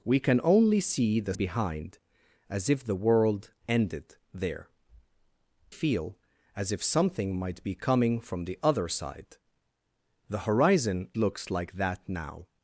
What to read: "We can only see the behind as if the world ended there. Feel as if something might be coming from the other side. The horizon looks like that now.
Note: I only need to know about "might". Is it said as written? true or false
true